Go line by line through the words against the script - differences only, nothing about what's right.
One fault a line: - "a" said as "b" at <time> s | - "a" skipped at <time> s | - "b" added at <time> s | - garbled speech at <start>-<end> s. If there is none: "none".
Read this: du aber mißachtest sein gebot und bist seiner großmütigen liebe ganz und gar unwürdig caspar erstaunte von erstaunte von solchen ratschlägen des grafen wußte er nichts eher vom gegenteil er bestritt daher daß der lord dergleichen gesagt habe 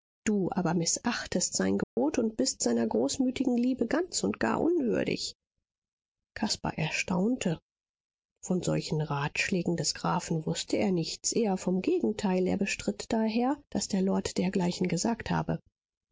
- "erstaunte von" skipped at 8.6 s